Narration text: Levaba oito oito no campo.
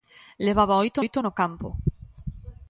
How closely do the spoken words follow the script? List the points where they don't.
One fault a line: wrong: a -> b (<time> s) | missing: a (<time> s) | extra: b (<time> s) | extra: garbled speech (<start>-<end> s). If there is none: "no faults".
no faults